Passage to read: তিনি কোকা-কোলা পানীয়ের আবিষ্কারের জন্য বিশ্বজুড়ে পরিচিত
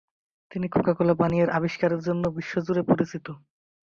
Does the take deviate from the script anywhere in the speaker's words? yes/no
no